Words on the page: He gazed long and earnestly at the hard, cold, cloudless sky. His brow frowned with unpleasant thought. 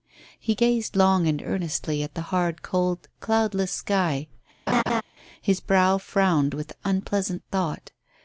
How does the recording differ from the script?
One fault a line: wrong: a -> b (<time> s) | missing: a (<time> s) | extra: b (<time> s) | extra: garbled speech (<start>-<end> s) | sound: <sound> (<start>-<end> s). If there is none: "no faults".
sound: laugh (4.7-5.0 s)